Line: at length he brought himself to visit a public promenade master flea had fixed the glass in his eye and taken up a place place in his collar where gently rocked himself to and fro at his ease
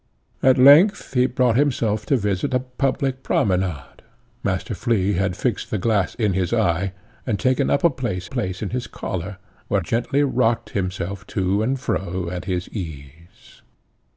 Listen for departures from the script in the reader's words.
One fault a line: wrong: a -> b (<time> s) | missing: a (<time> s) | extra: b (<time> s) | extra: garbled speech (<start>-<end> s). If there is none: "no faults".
no faults